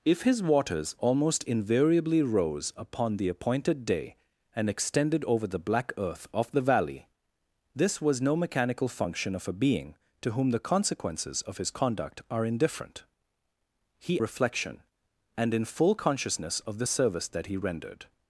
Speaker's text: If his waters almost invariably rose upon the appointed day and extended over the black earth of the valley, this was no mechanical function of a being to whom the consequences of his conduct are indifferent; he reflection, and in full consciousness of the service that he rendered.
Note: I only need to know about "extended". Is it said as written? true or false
true